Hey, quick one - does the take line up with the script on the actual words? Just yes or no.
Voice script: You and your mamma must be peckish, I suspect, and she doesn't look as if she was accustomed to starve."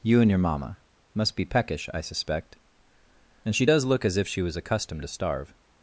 no